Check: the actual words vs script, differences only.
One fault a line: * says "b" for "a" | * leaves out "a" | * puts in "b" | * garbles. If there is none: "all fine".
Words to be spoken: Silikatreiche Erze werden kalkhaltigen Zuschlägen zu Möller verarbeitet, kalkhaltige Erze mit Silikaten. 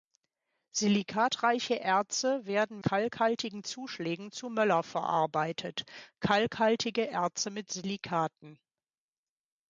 all fine